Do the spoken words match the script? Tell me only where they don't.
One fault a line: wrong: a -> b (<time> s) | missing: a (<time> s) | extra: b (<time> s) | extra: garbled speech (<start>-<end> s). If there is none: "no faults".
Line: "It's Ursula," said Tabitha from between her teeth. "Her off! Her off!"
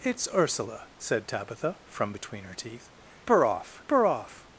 no faults